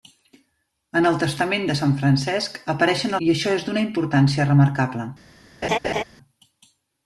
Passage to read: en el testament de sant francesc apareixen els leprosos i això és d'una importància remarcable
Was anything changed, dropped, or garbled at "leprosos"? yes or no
yes